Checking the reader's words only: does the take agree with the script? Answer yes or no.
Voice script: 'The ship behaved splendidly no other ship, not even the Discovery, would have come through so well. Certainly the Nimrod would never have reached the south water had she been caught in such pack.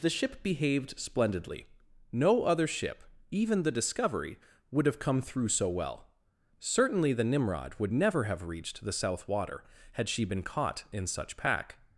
no